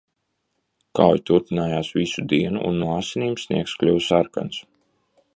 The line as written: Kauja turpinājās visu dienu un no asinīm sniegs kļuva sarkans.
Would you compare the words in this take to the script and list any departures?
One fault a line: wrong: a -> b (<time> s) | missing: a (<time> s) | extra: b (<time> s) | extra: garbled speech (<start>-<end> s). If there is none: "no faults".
no faults